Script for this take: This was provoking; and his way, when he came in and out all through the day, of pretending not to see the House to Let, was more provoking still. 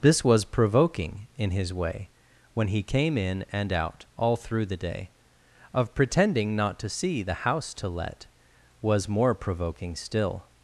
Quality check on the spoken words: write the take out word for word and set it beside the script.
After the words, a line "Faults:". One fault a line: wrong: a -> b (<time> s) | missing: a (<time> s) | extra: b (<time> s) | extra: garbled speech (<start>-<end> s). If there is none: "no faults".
This was provoking; in his way, when he came in and out all through the day, of pretending not to see the House to Let, was more provoking still.
Faults:
wrong: and -> in (1.4 s)